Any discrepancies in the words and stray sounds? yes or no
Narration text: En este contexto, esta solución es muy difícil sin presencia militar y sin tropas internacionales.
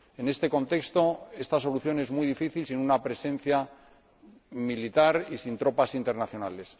yes